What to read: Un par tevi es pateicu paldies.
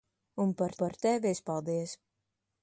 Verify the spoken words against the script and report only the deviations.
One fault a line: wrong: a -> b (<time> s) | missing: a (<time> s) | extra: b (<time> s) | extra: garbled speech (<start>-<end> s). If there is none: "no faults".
extra: par (0.8 s)
missing: pateicu (1.4 s)